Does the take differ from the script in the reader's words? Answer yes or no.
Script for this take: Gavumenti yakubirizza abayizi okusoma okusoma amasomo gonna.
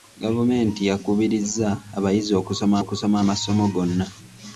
no